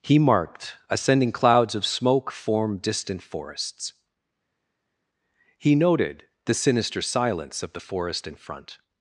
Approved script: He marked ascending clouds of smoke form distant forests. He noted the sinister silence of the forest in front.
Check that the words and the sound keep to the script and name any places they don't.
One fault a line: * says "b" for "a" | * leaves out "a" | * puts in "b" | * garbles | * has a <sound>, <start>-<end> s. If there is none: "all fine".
all fine